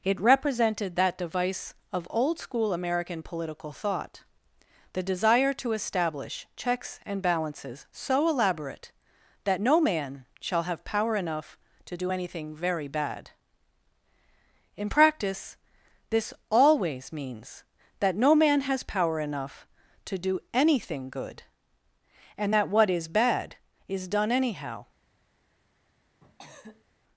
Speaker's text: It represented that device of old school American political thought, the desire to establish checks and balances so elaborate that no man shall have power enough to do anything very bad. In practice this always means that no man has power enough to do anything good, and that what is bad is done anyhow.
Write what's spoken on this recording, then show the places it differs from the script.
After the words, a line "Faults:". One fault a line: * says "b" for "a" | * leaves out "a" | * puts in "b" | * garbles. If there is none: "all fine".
It represented that device of old school American political thought, the desire to establish checks and balances so elaborate that no man shall have power enough to do anything very bad. In practice this always means that no man has power enough to do anything good, and that what is bad is done anyhow.
Faults:
all fine